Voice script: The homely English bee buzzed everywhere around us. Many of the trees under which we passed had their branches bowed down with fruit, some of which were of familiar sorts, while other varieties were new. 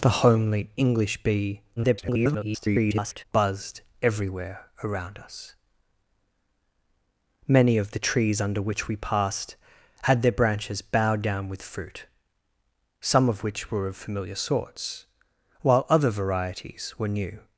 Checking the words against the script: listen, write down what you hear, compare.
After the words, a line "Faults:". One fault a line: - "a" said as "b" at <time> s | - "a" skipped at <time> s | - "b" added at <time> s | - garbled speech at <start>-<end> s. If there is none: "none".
The homely English bee [garbled] buzzed everywhere around us. Many of the trees under which we passed had their branches bowed down with fruit, some of which were of familiar sorts, while other varieties were new.
Faults:
- garbled speech at 1.8-3.2 s